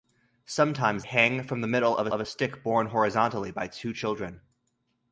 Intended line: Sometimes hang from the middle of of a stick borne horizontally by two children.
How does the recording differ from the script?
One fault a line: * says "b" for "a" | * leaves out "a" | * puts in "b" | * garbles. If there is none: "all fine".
all fine